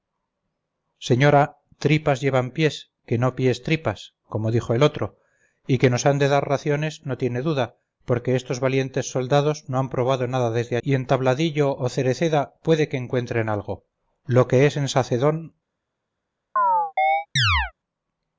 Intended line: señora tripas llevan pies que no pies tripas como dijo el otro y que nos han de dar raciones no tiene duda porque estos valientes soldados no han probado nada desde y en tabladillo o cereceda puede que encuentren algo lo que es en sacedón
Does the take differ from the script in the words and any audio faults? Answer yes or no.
yes